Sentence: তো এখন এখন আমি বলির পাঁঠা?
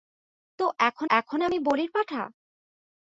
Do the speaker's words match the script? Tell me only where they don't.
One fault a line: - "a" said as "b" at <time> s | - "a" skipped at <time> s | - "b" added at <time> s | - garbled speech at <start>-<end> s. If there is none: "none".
none